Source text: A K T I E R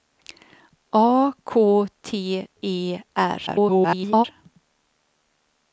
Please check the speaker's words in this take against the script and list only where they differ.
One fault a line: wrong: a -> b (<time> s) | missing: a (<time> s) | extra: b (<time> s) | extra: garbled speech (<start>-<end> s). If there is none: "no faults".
missing: I (2.4 s)
extra: garbled speech (3.5-4.3 s)